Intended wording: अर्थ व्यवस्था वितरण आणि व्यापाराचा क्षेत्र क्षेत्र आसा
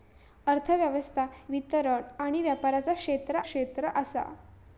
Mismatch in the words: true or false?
false